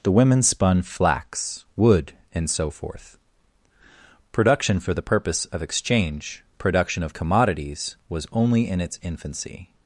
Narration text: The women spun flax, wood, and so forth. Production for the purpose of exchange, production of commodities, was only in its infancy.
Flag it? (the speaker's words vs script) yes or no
no